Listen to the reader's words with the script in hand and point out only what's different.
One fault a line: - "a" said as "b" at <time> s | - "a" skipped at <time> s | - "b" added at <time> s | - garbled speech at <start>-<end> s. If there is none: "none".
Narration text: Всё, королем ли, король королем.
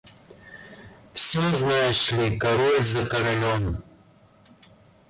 - "королем" said as "знаешь" at 1.5 s
- "за" added at 2.8 s